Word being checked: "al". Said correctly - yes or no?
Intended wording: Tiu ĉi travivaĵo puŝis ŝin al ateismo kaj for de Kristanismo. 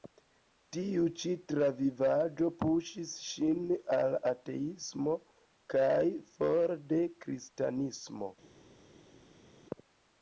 yes